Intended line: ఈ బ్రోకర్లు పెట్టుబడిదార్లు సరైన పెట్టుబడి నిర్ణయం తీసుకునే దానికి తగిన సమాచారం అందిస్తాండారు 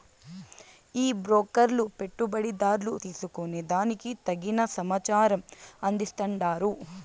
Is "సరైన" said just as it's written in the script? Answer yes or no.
no